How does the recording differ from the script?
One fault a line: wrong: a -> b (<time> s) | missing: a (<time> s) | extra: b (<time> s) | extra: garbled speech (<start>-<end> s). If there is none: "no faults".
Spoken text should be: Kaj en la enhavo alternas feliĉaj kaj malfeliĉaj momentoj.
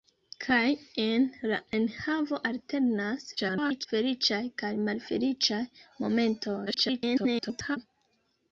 extra: garbled speech (3.4-3.9 s)
extra: garbled speech (6.7-7.8 s)